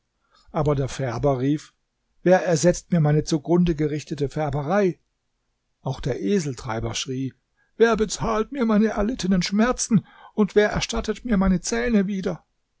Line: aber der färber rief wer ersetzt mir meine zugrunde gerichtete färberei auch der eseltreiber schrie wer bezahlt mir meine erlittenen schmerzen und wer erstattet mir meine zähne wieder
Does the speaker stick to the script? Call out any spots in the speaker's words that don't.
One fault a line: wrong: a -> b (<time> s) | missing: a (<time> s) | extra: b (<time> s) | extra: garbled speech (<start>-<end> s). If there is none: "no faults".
no faults